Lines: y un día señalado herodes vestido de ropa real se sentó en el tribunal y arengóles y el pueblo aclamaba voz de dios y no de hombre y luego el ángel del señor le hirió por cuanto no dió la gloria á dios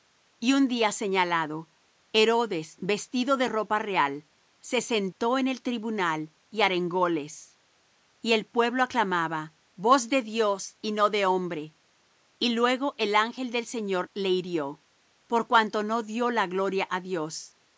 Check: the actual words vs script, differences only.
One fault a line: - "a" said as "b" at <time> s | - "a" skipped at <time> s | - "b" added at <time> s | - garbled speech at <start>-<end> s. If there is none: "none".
none